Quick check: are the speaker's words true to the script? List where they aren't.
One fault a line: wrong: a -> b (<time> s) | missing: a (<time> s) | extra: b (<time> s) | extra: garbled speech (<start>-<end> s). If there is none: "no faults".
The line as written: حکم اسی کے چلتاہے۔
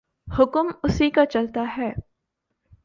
wrong: کے -> کا (1.1 s)